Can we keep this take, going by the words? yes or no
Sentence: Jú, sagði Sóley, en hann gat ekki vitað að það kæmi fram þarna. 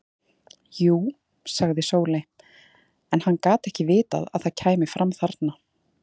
yes